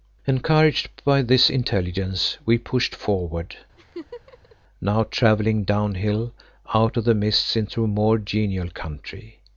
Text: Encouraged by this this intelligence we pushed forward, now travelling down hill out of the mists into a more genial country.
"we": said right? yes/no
yes